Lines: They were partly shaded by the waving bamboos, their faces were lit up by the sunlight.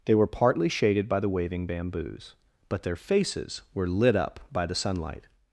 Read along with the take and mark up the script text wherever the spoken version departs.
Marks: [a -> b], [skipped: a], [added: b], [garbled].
They were partly shaded by the waving bamboos, [added: but] their faces were lit up by the sunlight.